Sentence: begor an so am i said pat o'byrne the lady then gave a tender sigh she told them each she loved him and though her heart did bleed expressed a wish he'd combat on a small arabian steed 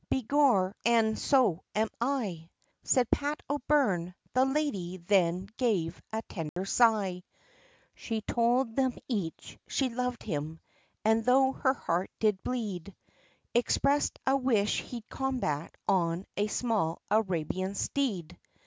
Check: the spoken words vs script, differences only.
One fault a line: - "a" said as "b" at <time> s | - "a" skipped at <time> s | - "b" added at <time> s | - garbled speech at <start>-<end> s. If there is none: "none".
none